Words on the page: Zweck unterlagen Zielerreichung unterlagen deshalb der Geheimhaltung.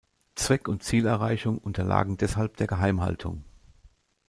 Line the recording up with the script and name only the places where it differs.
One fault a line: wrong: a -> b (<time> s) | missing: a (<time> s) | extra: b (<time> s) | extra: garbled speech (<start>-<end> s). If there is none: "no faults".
wrong: unterlagen -> und (0.7 s)